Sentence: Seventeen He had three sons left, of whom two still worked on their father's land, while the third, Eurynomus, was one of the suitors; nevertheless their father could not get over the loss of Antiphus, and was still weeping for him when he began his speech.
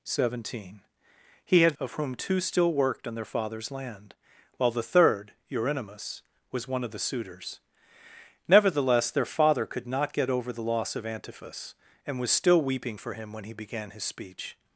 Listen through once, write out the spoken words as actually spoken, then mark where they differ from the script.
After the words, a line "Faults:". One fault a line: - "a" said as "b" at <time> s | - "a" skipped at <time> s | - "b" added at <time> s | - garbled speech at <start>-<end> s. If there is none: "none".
Seventeen He had of whom two still worked on their father's land, while the third, Eurynomus, was one of the suitors; nevertheless their father could not get over the loss of Antiphus, and was still weeping for him when he began his speech.
Faults:
- "three sons left" skipped at 1.8 s